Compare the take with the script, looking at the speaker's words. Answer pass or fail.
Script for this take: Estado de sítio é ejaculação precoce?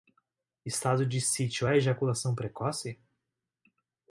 pass